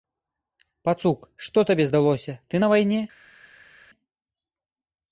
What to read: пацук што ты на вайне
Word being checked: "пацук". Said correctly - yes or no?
yes